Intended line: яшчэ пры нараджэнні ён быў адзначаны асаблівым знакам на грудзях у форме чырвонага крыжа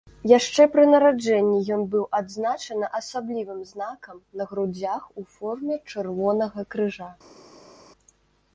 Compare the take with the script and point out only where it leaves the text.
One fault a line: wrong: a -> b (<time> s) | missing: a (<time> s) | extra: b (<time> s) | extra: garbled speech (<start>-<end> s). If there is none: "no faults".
no faults